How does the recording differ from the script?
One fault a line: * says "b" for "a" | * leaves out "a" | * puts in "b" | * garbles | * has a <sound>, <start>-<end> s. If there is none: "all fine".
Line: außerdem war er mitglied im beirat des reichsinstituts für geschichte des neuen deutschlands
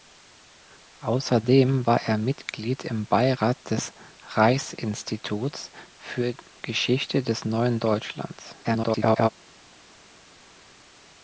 * garbles